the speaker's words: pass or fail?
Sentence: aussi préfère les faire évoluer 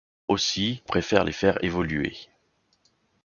pass